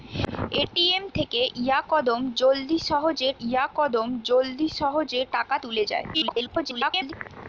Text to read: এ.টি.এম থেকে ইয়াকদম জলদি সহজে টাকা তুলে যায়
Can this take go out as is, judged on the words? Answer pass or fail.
fail